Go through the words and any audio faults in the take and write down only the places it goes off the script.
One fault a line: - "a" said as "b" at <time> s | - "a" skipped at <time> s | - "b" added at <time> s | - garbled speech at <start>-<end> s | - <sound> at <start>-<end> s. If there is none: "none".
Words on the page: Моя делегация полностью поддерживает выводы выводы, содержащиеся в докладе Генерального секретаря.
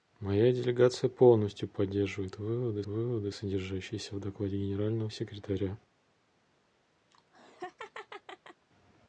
- laugh at 7.1-8.7 s